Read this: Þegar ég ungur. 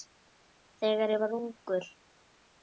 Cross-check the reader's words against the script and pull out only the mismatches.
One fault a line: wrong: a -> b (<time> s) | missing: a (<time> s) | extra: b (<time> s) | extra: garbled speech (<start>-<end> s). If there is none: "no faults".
extra: var (1.2 s)